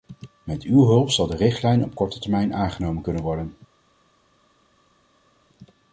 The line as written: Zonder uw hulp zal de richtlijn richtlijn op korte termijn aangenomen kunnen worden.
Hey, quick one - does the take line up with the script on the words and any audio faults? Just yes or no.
no